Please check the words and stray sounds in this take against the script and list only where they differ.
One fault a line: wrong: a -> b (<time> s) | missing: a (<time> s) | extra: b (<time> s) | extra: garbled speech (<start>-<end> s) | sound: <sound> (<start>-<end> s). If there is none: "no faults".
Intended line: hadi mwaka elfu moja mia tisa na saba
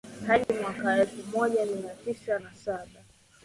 sound: dropout (0.4-0.5 s)